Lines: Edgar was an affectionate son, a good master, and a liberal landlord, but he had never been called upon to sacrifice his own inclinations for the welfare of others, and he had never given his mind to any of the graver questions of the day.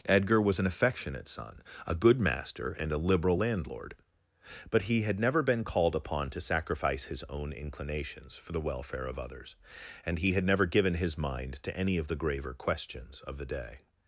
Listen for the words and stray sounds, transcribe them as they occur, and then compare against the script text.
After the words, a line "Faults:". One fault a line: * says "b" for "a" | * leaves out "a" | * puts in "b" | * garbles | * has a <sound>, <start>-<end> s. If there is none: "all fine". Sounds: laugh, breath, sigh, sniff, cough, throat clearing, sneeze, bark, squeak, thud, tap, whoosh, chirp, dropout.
Edgar was an affectionate son, a good master, and a liberal landlord, but he had never been called upon to sacrifice his own inclinations for the welfare of others, and he had never given his mind to any of the graver questions of the day.
Faults:
all fine